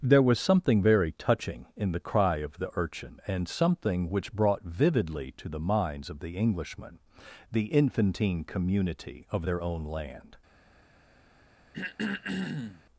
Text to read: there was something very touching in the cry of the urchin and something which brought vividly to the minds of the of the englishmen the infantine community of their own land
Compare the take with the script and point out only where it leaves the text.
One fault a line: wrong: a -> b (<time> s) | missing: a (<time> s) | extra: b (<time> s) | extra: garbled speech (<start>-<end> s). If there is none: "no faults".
missing: of the (6.4 s)